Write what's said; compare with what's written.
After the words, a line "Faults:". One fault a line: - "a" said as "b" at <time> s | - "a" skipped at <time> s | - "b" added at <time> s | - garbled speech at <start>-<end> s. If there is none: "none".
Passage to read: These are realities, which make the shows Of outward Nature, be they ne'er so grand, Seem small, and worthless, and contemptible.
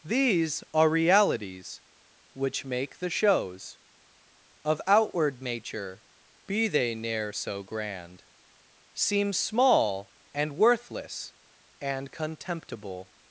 These are realities, which make the shows Of outward Nature, be they ne'er so grand, Seem small, and worthless, and contemptible.
Faults:
none